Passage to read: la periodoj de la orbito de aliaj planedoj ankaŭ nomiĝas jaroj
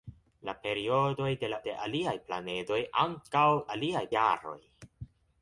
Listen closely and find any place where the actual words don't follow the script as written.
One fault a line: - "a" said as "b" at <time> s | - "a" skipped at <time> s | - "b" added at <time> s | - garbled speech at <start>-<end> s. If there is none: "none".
- "orbito" skipped at 1.6 s
- "nomiĝas" said as "aliaj" at 3.8 s